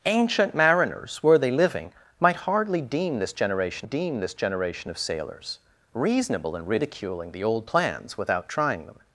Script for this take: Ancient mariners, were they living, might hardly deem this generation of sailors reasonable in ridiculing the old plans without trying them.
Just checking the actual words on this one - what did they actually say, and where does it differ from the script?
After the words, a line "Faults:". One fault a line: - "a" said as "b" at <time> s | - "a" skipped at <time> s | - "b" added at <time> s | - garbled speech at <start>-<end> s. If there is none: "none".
Ancient mariners, were they living, might hardly deem this generation deem this generation of sailors reasonable in ridiculing the old plans without trying them.
Faults:
- "deem this generation" added at 3.8 s